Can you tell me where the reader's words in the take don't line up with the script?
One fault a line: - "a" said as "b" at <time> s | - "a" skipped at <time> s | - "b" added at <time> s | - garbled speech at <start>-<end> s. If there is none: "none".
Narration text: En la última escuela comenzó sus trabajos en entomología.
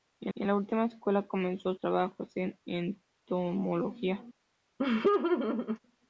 - "en" added at 0.3 s
- "sus" skipped at 1.7 s